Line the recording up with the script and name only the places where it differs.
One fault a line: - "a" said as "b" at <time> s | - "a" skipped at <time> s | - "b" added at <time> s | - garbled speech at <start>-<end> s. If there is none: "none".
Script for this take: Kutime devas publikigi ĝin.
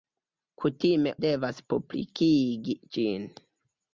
none